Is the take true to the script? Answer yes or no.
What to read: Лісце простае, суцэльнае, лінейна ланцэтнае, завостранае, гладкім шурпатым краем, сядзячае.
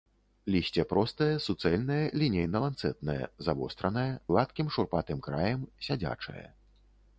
yes